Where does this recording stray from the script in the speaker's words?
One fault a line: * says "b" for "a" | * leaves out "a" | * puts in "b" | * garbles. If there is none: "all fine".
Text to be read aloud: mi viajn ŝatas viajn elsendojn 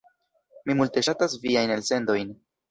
* says "multe" for "viajn"